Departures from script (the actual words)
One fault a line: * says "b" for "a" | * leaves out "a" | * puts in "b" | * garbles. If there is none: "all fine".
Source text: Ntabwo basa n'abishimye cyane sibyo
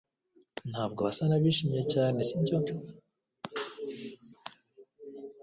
all fine